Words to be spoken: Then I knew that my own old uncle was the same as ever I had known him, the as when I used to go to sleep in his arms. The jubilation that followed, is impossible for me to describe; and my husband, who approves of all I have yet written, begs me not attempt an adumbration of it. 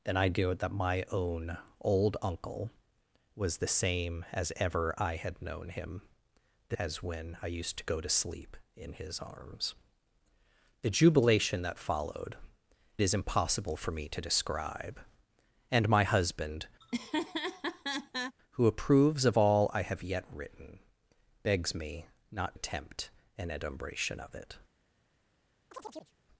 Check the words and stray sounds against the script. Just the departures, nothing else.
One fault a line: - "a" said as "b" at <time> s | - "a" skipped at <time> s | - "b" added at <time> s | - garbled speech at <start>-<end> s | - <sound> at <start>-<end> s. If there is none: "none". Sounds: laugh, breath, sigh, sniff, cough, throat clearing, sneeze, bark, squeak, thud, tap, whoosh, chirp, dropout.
- laugh at 16.8-18.3 s
- chirp at 25.7-26.2 s